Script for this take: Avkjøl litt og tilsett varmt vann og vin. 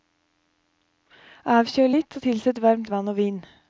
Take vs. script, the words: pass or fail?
pass